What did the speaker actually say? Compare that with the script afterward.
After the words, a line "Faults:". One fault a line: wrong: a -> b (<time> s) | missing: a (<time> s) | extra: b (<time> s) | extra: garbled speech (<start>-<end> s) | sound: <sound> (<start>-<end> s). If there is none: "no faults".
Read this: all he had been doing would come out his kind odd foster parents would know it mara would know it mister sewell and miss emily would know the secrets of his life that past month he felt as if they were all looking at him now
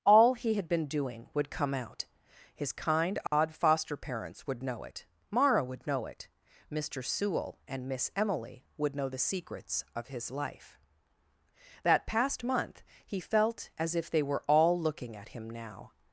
all he had been doing would come out his kind odd foster parents would know it mara would know it mister sewell and miss emily would know the secrets of his life that past month he felt as if they were all looking at him now
Faults:
sound: dropout (3.3-3.3 s)